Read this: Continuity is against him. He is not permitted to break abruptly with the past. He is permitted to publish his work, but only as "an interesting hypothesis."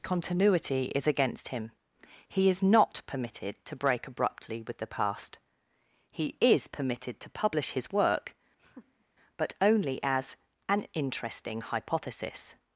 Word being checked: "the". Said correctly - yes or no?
yes